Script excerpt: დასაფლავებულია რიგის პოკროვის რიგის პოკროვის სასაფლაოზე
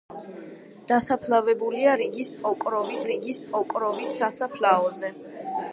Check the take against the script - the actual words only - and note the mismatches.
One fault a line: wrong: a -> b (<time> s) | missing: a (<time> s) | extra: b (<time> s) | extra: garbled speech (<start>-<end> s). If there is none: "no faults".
no faults